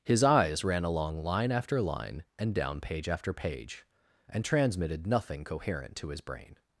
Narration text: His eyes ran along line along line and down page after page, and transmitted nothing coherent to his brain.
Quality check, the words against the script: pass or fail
fail